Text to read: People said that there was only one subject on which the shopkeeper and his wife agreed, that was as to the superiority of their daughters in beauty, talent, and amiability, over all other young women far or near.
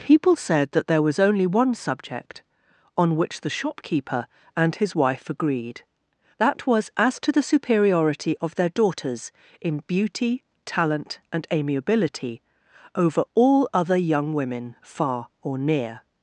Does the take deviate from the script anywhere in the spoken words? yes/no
no